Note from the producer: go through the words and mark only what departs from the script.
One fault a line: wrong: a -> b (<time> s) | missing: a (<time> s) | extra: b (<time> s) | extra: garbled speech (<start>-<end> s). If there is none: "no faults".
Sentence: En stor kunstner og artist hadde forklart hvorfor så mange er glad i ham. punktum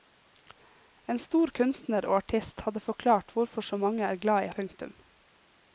missing: ham (4.5 s)